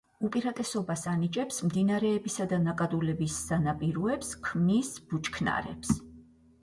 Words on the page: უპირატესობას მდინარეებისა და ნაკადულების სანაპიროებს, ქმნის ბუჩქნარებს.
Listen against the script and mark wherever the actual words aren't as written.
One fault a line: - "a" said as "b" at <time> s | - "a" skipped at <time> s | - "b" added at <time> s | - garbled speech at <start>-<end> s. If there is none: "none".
- "ანიჭებს" added at 1.1 s